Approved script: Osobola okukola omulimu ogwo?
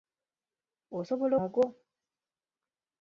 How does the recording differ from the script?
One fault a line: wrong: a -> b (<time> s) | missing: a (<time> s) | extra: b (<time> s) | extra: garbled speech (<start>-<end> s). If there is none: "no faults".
missing: okukola omulimu (1.3 s)